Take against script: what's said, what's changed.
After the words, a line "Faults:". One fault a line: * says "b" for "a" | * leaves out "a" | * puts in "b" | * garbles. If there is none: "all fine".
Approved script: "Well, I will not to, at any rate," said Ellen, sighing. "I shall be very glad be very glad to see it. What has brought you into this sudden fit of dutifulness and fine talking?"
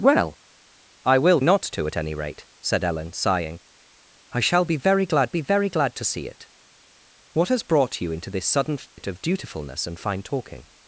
"Well, I will not to, at any rate," said Ellen, sighing. "I shall be very glad be very glad to see it. What has brought you into this sudden fit of dutifulness and fine talking?"
Faults:
all fine